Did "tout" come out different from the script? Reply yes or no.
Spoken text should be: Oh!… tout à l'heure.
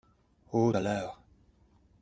yes